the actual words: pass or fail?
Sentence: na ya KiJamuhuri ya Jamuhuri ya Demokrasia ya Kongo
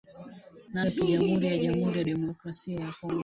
pass